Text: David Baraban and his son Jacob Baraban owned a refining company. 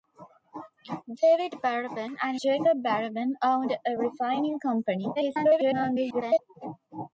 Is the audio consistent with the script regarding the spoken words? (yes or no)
no